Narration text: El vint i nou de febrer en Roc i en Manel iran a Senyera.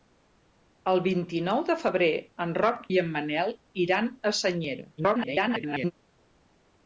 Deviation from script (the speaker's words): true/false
true